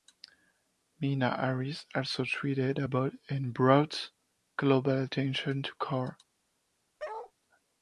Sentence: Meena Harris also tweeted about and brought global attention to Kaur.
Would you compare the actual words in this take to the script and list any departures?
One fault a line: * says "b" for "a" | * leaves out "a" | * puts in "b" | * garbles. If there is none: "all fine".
all fine